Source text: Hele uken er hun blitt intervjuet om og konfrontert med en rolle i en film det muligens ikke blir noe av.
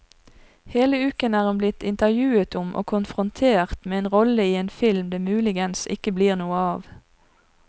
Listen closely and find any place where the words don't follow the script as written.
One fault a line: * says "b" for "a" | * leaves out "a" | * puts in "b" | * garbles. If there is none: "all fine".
all fine